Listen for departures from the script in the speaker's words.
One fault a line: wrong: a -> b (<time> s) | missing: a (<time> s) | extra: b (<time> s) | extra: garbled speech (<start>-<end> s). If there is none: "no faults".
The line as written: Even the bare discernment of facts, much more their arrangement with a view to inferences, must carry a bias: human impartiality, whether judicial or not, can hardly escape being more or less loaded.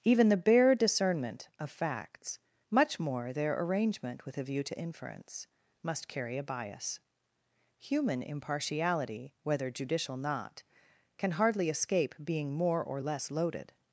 wrong: inferences -> inference (4.8 s)
missing: or (10.2 s)